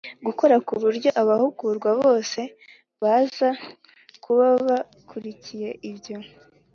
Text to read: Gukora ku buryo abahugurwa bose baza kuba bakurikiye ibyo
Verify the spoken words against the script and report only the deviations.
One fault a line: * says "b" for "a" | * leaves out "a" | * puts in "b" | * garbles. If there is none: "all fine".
all fine